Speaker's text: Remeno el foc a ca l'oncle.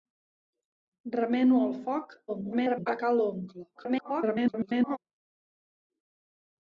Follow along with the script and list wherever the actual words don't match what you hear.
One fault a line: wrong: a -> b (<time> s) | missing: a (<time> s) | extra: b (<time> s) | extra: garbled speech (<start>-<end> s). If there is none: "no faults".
extra: garbled speech (2.3-2.9 s)
extra: garbled speech (3.7-5.0 s)